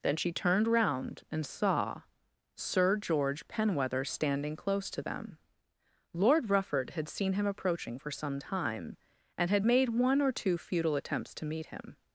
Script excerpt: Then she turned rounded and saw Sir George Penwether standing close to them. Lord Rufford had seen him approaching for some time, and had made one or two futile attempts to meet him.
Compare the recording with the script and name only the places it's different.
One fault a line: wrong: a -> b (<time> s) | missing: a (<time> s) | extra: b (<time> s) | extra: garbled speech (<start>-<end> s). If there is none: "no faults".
wrong: rounded -> round (0.7 s)